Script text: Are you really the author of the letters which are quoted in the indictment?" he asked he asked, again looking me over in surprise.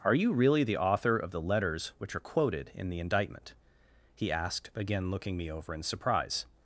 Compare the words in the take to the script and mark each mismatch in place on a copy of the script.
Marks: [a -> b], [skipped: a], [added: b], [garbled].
Are you really the author of the letters which are quoted in the indictment?" he asked [skipped: he asked,] again looking me over in surprise.